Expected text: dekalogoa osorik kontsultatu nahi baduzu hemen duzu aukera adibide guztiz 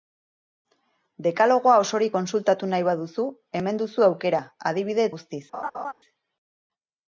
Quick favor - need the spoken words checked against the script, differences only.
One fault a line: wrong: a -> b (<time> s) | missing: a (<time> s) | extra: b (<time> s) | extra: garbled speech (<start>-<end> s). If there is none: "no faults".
no faults